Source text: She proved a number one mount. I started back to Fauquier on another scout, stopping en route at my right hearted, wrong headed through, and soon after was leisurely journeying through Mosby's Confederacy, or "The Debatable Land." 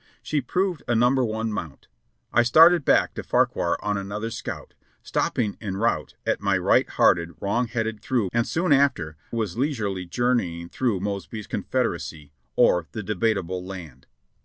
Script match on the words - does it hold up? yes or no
yes